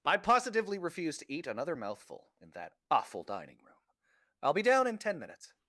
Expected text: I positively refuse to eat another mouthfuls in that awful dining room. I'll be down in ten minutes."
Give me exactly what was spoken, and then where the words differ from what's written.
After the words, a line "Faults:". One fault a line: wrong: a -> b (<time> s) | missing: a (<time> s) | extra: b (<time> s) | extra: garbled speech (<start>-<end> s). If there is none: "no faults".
I positively refuse to eat another mouthful in that awful dining room. I'll be down in ten minutes."
Faults:
wrong: mouthfuls -> mouthful (1.7 s)